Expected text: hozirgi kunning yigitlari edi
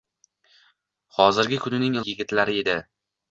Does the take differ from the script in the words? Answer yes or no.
no